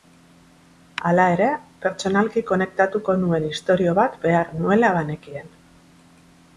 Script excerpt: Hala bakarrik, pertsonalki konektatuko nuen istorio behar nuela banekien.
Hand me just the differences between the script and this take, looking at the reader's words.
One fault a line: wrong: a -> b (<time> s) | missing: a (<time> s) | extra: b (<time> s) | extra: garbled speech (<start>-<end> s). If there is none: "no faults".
wrong: bakarrik -> ere (1.3 s)
extra: bat (4.0 s)